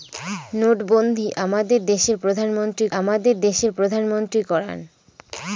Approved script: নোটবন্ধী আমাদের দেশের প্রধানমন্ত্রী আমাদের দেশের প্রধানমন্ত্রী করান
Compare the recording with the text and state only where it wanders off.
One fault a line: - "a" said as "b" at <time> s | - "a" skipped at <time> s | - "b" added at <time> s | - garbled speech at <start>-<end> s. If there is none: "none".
none